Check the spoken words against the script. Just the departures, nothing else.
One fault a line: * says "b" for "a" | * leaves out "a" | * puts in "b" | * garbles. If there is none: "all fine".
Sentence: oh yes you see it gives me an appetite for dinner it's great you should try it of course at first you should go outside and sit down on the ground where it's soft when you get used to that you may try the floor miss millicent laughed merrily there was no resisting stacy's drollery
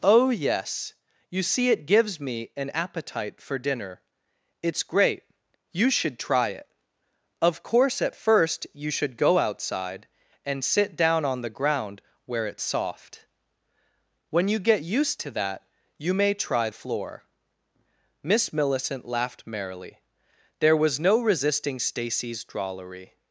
* leaves out "the"